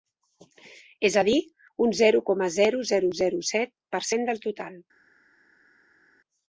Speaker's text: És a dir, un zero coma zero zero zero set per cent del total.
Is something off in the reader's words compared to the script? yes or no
no